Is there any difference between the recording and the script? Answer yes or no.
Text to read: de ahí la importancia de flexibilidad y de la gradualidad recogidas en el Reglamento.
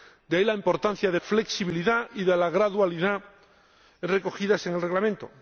no